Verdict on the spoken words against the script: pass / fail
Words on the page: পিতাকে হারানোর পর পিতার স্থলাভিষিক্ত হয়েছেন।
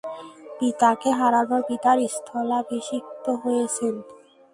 fail